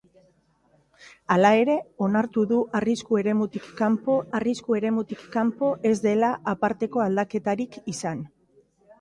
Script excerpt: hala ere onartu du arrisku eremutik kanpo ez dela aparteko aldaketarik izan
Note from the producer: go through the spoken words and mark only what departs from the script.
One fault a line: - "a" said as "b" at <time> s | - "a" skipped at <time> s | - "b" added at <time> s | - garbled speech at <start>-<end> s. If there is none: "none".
- "arrisku eremutik kanpo" added at 4.4 s